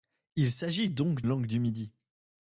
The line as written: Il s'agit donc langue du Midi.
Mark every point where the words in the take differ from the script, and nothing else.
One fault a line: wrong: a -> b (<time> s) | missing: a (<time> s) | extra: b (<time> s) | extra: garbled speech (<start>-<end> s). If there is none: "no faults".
no faults